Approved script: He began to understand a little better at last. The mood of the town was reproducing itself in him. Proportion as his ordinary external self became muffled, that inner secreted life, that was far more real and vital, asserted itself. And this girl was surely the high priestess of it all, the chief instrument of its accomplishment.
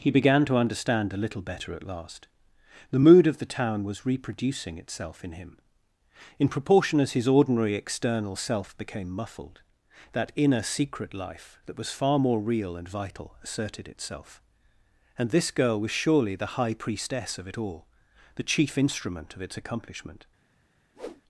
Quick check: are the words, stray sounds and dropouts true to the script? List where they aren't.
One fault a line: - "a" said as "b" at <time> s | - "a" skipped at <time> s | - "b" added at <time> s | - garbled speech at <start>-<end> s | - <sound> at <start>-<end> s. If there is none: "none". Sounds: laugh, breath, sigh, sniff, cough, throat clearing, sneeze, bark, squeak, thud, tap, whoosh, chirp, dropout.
- "In" added at 6.4 s
- "secreted" said as "secret" at 10.6 s
- whoosh at 20.9-21.2 s